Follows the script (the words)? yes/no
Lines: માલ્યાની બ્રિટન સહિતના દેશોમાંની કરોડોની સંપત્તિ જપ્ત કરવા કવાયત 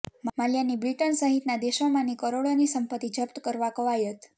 yes